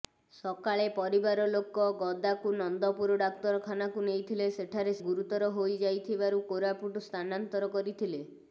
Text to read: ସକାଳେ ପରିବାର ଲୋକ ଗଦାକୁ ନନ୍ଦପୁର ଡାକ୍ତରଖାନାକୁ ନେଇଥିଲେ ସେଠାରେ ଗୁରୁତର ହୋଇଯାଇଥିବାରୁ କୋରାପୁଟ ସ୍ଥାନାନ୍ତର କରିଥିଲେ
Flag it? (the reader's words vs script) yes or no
no